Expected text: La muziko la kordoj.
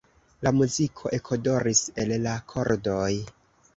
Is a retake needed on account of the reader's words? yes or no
yes